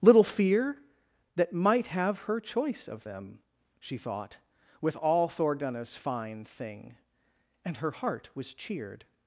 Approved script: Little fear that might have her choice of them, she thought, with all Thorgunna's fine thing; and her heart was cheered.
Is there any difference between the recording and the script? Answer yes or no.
no